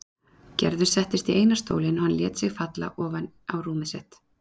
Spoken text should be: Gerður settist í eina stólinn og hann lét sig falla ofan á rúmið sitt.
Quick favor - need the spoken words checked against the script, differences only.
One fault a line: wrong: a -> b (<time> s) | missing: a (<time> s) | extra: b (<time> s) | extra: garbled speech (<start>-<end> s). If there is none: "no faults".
no faults